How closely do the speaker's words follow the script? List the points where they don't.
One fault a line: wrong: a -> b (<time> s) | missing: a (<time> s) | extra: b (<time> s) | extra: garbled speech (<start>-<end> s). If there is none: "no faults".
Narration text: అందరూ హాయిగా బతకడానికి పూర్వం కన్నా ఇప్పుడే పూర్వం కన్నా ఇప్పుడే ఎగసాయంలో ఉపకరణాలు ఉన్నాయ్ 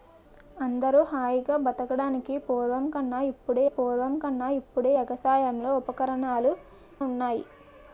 no faults